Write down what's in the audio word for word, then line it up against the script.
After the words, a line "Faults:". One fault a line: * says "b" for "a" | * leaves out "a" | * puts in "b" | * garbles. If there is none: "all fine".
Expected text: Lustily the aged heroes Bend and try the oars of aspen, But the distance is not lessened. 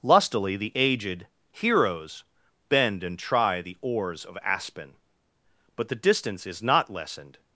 Lustily the aged heroes Bend and try the oars of aspen, But the distance is not lessened.
Faults:
all fine